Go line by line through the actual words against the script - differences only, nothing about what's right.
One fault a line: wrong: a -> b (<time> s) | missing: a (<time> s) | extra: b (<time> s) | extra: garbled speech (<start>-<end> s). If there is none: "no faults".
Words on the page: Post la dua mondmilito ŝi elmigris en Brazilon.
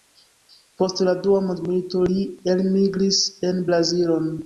wrong: ŝi -> li (2.1 s)